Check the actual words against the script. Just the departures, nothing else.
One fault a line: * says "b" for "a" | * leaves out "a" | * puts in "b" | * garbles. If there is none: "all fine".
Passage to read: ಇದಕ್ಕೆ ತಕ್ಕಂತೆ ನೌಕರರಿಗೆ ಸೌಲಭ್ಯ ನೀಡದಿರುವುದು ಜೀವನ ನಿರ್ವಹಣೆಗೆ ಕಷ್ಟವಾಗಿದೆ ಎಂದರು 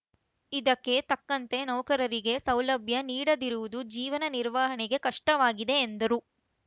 all fine